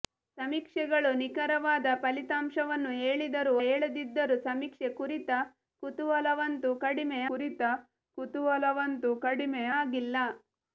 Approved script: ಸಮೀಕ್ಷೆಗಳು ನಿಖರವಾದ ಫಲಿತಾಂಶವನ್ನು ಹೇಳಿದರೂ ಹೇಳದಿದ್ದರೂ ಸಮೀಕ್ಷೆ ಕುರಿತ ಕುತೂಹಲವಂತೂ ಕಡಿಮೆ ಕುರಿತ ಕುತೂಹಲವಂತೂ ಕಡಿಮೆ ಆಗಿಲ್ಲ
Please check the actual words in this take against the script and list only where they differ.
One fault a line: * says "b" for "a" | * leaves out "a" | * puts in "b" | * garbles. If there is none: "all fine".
all fine